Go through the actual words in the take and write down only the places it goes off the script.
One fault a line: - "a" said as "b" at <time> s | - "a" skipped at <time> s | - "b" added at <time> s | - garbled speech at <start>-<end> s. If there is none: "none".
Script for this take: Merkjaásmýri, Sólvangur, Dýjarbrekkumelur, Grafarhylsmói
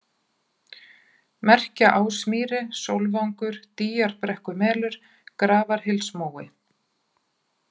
none